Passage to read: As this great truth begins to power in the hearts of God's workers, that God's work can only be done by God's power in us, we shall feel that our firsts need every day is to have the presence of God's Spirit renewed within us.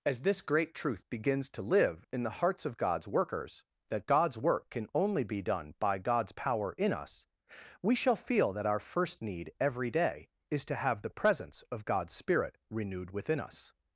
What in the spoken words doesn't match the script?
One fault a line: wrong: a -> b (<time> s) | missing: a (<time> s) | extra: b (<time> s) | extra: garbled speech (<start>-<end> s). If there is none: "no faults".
wrong: power -> live (1.6 s)
wrong: firsts -> first (8.8 s)